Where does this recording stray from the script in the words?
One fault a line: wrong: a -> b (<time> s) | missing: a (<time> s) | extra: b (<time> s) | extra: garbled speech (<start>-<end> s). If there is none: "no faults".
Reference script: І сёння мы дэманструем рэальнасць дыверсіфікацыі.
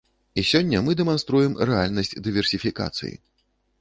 no faults